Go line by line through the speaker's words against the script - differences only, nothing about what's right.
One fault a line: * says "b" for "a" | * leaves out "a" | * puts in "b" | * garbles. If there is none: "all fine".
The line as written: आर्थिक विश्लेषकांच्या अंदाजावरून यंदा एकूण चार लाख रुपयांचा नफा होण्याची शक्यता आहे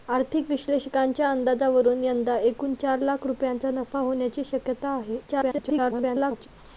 * garbles